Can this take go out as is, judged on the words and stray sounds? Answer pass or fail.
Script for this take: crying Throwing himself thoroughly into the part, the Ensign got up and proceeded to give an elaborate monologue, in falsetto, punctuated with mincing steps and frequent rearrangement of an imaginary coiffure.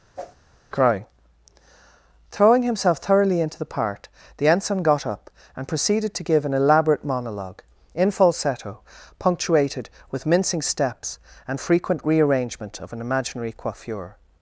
fail